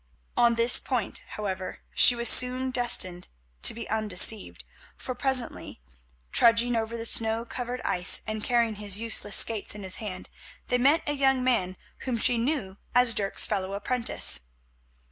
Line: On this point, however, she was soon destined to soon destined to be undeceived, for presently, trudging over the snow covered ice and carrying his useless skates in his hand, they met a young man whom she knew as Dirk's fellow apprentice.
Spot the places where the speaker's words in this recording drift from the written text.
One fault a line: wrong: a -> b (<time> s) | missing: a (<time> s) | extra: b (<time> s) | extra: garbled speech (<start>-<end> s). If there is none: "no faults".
missing: soon destined to (3.7 s)